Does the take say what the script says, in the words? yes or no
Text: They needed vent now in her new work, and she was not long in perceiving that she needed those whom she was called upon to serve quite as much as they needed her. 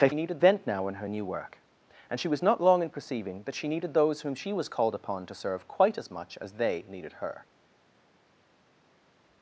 yes